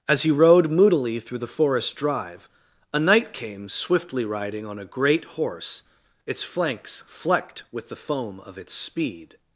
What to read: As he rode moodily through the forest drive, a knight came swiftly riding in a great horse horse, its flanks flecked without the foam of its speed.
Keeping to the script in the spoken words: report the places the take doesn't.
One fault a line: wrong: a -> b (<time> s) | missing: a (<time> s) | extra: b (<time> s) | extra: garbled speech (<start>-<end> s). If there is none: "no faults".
wrong: in -> on (4.7 s)
missing: horse (5.8 s)
wrong: without -> with (7.7 s)